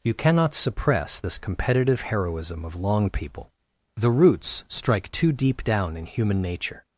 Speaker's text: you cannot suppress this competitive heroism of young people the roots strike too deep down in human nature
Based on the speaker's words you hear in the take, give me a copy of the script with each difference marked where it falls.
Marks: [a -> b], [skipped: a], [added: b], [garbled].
you cannot suppress this competitive heroism of [young -> long] people the roots strike too deep down in human nature